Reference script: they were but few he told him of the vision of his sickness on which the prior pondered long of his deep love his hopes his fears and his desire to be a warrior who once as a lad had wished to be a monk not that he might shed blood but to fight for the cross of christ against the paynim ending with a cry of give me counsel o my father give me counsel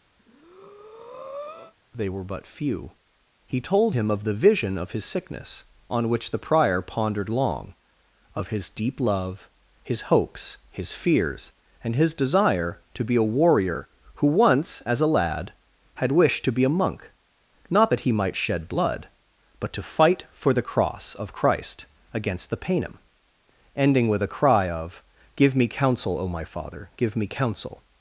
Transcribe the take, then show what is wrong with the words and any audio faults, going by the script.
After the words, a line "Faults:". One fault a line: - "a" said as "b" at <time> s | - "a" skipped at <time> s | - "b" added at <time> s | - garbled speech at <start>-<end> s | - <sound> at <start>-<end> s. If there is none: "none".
they were but few he told him of the vision of his sickness on which the prior pondered long of his deep love his hopes his fears and his desire to be a warrior who once as a lad had wished to be a monk not that he might shed blood but to fight for the cross of christ against the paynim ending with a cry of give me counsel o my father give me counsel
Faults:
- breath at 0.2-1.7 s